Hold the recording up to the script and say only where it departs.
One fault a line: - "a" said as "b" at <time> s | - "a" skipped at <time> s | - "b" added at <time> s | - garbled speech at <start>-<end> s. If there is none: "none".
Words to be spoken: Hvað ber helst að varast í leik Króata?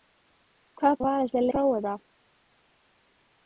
- "ber helst" skipped at 1.0 s
- "leik" skipped at 1.4 s